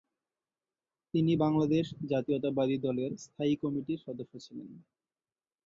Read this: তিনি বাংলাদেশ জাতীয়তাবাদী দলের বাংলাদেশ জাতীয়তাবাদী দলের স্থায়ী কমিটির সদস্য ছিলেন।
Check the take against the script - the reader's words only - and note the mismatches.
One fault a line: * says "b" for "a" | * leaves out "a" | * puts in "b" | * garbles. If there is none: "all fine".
* leaves out "বাংলাদেশ জাতীয়তাবাদী দলের"